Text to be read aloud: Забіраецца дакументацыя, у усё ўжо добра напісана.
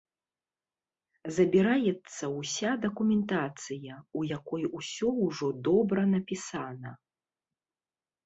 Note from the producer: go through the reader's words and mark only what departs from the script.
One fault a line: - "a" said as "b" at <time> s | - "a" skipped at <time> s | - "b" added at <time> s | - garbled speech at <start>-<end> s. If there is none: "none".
- "ўся" added at 2.4 s
- "якой" added at 4.4 s